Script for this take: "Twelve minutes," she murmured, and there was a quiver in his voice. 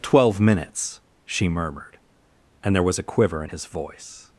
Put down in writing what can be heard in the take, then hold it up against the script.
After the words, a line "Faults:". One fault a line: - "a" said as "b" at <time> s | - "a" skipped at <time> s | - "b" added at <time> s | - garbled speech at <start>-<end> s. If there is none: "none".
"Twelve minutes," she murmured, and there was a quiver in his voice.
Faults:
none